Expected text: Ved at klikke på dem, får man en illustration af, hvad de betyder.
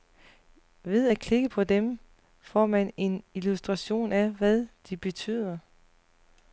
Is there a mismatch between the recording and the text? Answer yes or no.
no